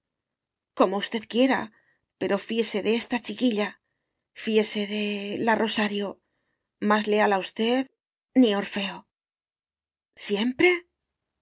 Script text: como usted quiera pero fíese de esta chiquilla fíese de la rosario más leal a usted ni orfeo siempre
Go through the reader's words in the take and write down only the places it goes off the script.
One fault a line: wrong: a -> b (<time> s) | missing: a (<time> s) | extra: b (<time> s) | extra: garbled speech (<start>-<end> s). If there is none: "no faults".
no faults